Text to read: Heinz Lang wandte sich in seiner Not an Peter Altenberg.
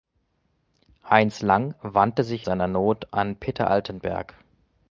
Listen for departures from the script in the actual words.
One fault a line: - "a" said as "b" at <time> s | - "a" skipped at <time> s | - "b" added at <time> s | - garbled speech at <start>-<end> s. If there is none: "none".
- "in" skipped at 2.5 s